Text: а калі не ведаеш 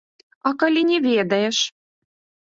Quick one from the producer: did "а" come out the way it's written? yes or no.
yes